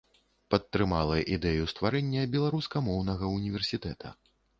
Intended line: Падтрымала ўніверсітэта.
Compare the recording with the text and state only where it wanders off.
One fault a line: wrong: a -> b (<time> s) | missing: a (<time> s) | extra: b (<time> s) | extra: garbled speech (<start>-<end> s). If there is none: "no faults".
extra: ідэю стварэння беларускамоўнага (1.4 s)